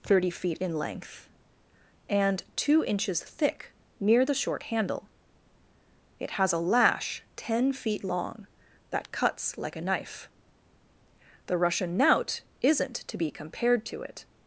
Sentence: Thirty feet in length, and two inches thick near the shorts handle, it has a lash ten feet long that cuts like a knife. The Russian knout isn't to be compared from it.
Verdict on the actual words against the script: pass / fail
fail